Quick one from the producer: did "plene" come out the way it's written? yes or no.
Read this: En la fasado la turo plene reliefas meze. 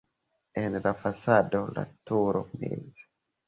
no